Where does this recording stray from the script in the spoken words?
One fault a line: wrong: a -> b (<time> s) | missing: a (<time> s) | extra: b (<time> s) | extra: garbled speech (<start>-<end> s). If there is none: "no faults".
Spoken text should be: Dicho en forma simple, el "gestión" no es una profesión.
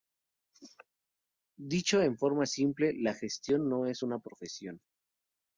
wrong: el -> la (3.0 s)